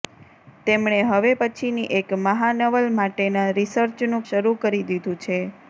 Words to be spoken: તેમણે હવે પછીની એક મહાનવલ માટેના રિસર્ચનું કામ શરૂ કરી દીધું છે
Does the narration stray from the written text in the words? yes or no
yes